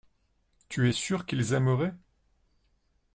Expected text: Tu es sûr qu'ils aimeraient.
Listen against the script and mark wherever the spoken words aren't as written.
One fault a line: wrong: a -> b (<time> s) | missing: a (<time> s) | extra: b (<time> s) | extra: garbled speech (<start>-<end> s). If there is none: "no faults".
no faults